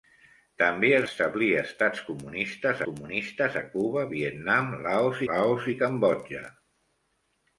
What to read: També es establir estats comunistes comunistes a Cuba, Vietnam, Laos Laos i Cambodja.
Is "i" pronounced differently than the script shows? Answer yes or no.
no